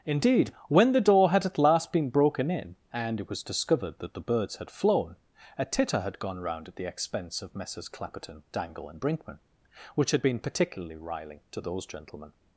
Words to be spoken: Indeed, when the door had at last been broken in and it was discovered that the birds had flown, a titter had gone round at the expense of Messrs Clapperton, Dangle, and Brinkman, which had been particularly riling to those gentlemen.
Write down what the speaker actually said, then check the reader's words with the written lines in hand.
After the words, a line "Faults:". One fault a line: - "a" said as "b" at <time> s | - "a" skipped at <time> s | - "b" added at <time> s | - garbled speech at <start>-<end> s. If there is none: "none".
Indeed, when the door had at last been broken in and it was discovered that the birds had flown, a titter had gone round at the expense of Messrs Clapperton, Dangle, and Brinkman, which had been particularly riling to those gentlemen.
Faults:
none